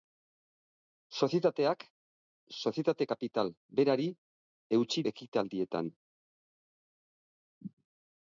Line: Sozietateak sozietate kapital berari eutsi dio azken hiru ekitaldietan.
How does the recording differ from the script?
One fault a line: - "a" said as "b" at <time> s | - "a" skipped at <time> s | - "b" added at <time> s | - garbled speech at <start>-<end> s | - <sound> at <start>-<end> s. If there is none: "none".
- "dio azken hiru" skipped at 5.0 s